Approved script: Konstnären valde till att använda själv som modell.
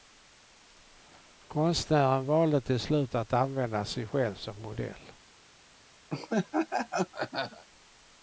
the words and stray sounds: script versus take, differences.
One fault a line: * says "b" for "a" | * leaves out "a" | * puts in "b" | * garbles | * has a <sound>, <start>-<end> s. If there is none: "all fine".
* puts in "slut"
* puts in "sig"
* has a laugh, 6.1-7.7 s